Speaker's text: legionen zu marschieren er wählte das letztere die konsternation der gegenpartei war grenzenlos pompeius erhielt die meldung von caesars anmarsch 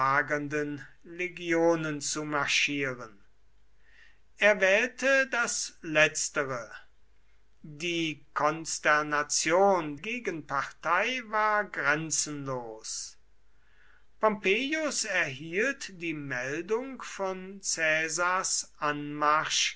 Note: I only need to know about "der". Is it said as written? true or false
false